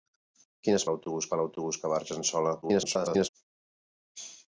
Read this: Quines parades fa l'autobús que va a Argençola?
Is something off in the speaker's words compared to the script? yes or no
yes